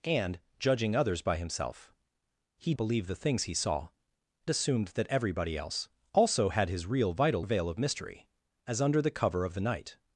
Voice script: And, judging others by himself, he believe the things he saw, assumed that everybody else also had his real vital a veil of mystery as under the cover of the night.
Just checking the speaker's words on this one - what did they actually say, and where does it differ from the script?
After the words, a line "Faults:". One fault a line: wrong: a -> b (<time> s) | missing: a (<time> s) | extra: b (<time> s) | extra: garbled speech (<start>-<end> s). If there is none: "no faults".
And, judging others by himself, he believe the things he saw, assumed that everybody else also had his real vital a veil of mystery as under the cover of the night.
Faults:
no faults